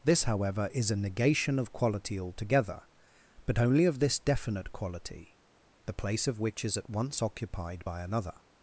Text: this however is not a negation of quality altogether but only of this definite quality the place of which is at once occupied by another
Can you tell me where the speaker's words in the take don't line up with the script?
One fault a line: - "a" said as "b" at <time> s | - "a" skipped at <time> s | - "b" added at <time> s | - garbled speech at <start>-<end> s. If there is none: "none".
- "not" skipped at 0.9 s